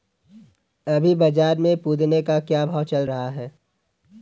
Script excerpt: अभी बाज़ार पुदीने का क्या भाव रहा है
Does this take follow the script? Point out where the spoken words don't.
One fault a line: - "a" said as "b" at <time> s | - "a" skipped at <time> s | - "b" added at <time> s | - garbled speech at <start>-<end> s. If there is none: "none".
- "में" added at 1.6 s
- "चल" added at 2.8 s